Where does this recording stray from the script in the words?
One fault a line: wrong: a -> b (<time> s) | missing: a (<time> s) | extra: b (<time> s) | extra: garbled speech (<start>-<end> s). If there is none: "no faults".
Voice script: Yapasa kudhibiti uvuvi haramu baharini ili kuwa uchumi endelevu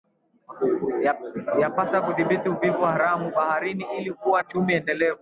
no faults